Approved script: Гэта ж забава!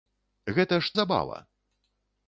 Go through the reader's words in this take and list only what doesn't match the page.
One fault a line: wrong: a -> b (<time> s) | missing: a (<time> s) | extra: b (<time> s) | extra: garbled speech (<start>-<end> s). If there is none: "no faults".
no faults